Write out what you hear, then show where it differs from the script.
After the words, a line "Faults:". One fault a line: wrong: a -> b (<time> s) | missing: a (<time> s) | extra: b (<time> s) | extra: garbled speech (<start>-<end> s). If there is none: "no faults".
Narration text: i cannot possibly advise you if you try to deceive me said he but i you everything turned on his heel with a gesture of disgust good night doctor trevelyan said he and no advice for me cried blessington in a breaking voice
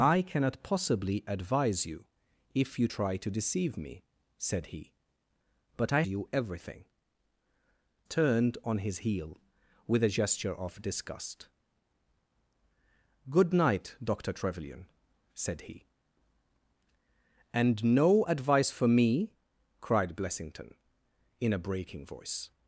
i cannot possibly advise you if you try to deceive me said he but i you everything turned on his heel with a gesture of disgust good night doctor trevelyan said he and no advice for me cried blessington in a breaking voice
Faults:
no faults